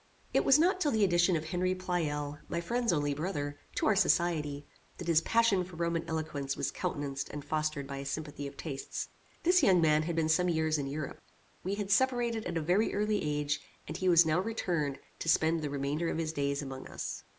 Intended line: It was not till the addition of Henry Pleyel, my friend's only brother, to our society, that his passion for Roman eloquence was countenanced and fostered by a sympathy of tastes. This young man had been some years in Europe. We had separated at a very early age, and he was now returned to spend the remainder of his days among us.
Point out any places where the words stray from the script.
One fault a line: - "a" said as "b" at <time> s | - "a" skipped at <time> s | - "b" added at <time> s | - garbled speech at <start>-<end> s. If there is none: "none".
none